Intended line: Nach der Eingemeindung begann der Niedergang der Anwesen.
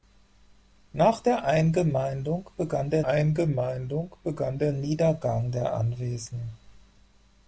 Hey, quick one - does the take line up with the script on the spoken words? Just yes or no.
no